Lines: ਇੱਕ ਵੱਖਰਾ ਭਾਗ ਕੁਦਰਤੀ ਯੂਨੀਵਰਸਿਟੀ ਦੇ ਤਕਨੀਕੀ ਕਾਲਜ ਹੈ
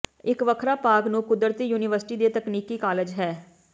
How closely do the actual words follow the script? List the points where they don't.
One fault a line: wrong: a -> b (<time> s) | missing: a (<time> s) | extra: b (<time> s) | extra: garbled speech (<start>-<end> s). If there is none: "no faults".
extra: ਨੂੰ (1.1 s)